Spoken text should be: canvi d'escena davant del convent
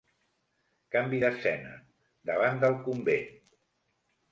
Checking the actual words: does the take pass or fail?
pass